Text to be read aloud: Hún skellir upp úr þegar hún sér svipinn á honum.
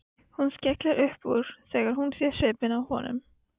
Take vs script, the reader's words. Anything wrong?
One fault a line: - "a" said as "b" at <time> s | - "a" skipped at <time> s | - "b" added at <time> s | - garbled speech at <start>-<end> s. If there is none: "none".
none